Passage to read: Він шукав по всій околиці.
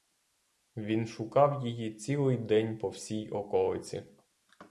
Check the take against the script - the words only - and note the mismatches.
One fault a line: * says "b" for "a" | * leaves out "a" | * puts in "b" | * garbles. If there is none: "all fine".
* puts in "її цілий день"